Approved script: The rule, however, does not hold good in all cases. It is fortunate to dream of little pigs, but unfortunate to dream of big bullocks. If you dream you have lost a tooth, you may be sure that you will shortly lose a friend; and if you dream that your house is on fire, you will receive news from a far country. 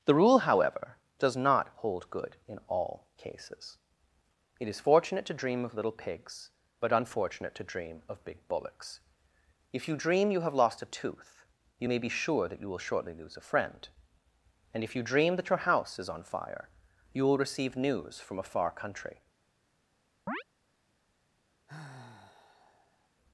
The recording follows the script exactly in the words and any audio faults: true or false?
false